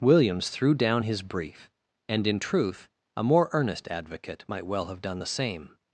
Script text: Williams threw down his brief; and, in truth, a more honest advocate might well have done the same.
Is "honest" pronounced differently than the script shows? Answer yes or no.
yes